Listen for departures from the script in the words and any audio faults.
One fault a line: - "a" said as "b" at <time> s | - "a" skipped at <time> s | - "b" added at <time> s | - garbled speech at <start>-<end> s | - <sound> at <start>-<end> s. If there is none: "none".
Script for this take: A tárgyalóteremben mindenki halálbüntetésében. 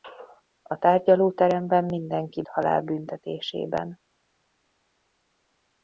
none